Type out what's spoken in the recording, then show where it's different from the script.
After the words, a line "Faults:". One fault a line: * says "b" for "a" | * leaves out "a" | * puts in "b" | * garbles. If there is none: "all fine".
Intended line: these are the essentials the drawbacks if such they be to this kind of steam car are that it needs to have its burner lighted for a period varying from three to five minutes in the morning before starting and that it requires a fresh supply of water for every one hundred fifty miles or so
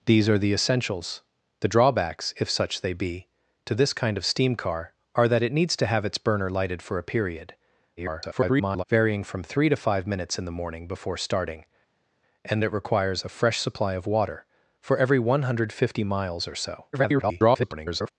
these are the essentials the drawbacks if such they be to this kind of steam car are that it needs to have its burner lighted for a period [garbled] varying from three to five minutes in the morning before starting and it requires a fresh supply of water for every one hundred fifty miles or so [garbled]
Faults:
* garbles
* leaves out "that"
* garbles